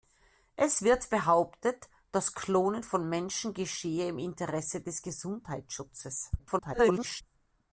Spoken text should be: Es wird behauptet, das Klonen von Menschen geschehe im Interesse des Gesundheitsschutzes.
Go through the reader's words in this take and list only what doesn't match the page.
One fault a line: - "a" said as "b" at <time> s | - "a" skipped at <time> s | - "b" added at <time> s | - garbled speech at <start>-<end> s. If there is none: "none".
- garbled speech at 6.4-7.2 s